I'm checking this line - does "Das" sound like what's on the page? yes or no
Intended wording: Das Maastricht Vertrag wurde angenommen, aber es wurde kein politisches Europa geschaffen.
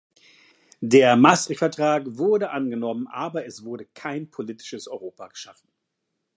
no